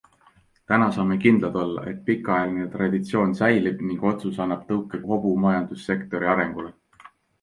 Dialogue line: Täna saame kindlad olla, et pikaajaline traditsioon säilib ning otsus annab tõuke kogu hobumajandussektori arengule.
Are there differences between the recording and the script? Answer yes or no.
yes